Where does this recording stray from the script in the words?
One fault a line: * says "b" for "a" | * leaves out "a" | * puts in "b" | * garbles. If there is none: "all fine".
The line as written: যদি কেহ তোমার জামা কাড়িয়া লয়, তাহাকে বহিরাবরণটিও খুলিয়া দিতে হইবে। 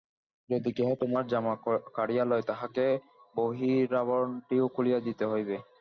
all fine